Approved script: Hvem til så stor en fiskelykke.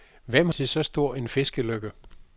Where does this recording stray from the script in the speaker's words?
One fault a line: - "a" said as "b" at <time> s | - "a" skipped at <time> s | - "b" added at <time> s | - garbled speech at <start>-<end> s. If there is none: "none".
none